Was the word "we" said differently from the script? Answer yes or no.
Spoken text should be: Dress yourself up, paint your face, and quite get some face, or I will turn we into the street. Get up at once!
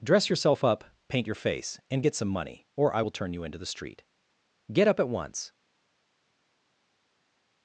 yes